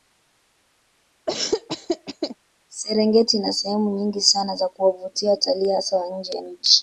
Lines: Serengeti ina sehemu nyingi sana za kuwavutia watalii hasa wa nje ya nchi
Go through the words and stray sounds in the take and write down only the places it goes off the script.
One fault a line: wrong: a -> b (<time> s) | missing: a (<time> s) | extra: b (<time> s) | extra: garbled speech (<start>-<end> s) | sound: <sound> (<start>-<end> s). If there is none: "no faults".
sound: laugh (1.3-2.4 s)